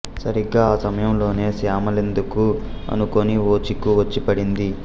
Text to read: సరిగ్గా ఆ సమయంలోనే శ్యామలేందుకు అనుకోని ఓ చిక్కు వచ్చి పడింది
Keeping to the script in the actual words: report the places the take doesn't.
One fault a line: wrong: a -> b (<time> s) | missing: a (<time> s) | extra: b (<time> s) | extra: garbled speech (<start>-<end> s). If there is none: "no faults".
no faults